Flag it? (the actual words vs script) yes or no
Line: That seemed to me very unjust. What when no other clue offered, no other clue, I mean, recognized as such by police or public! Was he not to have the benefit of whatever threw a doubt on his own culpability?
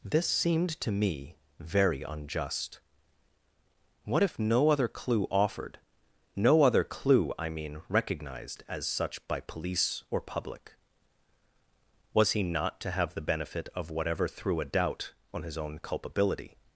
yes